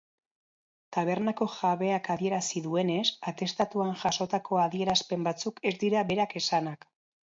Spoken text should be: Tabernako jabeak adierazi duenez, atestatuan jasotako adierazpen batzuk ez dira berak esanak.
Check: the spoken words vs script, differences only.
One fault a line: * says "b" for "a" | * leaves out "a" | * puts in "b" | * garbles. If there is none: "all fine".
all fine